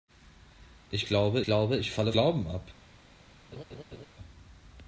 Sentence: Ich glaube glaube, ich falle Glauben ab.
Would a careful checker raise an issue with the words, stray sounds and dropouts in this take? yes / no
yes